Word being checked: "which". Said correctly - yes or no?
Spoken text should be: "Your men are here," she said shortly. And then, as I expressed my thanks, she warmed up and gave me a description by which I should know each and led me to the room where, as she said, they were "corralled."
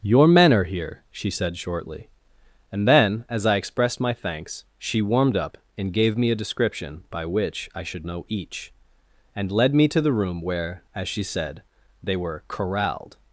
yes